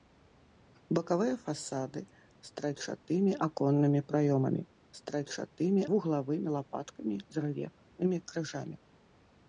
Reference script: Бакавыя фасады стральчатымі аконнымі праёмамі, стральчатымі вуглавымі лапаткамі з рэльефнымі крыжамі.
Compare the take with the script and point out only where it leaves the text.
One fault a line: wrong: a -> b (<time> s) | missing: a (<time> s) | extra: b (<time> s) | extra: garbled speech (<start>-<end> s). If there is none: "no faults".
no faults